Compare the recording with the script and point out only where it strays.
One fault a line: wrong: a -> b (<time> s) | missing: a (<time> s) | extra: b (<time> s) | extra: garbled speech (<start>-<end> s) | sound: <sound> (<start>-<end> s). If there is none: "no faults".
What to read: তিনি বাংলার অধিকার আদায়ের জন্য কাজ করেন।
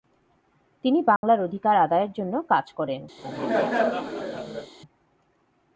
sound: dropout (1.2-1.2 s)
sound: laugh (3.2-4.7 s)